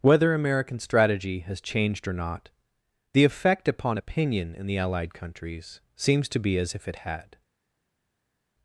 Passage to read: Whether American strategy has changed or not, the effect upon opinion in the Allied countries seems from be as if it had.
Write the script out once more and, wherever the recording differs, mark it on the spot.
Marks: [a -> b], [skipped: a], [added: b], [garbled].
Whether American strategy has changed or not, the effect upon opinion in the Allied countries seems [from -> to] be as if it had.